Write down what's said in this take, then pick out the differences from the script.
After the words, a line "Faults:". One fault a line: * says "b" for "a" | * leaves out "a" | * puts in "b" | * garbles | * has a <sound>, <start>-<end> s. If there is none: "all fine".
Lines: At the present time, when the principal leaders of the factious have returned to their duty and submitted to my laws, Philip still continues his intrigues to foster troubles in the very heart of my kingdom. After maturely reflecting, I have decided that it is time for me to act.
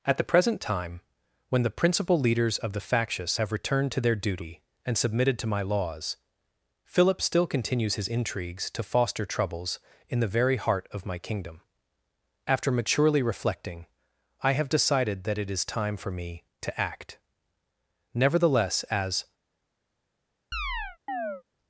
At the present time, when the principal leaders of the factious have returned to their duty and submitted to my laws, Philip still continues his intrigues to foster troubles in the very heart of my kingdom. After maturely reflecting, I have decided that it is time for me to act. Nevertheless, as
Faults:
* puts in "Nevertheless as"
* has a chirp, 20.5-21.4 s